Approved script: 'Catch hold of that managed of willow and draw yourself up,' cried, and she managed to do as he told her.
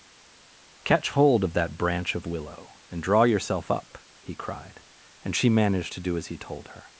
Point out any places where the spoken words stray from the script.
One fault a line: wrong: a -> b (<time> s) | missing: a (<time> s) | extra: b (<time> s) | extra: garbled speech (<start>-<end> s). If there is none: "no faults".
wrong: managed -> branch (1.8 s)
extra: he (4.2 s)